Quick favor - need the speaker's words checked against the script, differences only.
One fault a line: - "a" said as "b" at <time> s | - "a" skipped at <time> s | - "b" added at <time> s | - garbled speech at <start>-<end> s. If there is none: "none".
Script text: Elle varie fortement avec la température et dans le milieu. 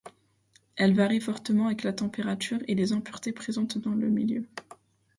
- "les impuretés présentes" added at 2.8 s